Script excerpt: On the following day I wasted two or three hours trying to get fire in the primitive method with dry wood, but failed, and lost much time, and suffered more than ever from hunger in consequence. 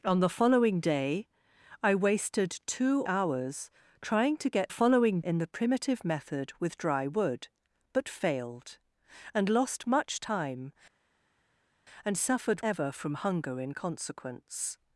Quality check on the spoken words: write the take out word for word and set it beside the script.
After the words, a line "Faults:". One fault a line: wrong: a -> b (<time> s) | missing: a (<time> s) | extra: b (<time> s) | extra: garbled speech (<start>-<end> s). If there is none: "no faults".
On the following day I wasted two hours trying to get following in the primitive method with dry wood, but failed, and lost much time, and suffered ever from hunger in consequence.
Faults:
missing: or three (3.0 s)
wrong: fire -> following (4.7 s)
missing: more than (12.6 s)